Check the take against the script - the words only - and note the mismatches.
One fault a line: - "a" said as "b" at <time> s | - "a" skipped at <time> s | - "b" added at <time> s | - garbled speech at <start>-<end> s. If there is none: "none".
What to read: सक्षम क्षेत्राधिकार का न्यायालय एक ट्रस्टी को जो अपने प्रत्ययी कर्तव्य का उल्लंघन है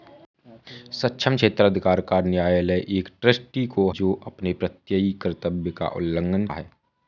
none